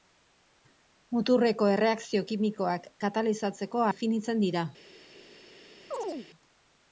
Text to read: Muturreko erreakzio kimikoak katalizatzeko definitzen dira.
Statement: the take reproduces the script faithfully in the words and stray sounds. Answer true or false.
false